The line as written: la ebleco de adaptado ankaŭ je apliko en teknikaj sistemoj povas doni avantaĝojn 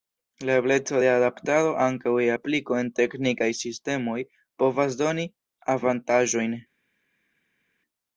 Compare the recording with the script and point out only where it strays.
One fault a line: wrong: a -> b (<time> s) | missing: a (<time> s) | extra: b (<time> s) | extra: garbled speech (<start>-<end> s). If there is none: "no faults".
no faults